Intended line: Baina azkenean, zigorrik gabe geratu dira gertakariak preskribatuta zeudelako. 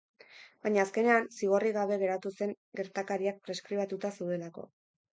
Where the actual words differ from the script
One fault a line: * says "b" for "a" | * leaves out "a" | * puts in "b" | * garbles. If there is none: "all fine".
* says "zen" for "dira"